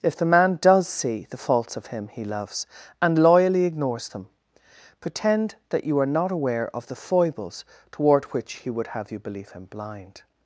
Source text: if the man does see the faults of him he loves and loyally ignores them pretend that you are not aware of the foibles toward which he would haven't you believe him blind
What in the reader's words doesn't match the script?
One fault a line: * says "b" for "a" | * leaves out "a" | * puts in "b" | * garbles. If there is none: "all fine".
* says "have" for "haven't"